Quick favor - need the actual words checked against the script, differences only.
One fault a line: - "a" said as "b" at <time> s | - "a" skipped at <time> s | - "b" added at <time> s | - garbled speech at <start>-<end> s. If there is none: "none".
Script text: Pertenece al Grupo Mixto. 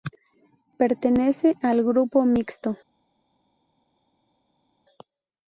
none